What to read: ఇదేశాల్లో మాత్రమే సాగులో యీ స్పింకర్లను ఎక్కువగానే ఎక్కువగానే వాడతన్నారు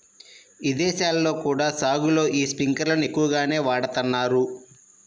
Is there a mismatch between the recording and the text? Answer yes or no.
yes